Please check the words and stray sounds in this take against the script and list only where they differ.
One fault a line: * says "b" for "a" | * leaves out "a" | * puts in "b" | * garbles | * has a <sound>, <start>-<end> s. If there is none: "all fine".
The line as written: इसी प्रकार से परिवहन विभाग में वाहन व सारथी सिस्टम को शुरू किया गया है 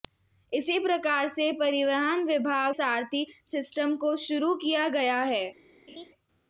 * leaves out "में वाहन व"
* has a laugh, 5.9-6.1 s